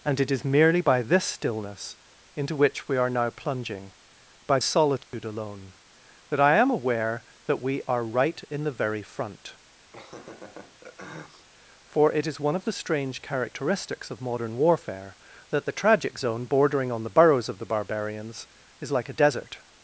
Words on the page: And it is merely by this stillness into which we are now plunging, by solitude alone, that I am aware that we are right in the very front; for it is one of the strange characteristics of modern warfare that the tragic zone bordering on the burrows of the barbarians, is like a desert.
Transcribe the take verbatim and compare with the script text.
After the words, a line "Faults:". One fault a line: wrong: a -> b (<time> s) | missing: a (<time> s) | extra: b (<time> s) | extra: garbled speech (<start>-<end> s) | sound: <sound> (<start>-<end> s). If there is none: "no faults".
And it is merely by this stillness into which we are now plunging, by solitude alone, that I am aware that we are right in the very front; for it is one of the strange characteristics of modern warfare that the tragic zone bordering on the burrows of the barbarians, is like a desert.
Faults:
sound: dropout (5.0-5.1 s)
sound: laugh (9.9-11.5 s)